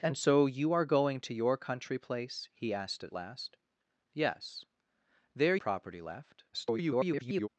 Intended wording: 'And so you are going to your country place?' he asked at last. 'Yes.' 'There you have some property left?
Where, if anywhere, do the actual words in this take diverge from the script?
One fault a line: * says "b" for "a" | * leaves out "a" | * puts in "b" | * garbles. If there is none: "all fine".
* leaves out "you have some"
* garbles